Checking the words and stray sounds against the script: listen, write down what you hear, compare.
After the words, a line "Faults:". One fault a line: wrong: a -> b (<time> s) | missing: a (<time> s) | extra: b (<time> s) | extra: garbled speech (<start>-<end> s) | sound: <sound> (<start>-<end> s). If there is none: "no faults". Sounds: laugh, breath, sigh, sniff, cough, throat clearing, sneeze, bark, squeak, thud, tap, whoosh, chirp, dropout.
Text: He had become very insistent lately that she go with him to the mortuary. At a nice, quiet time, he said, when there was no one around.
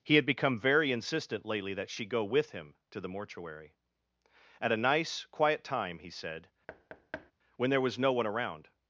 He had become very insistent lately that she go with him to the mortuary. At a nice, quiet time, he said, when there was no one around.
Faults:
sound: thud (6.7-7.3 s)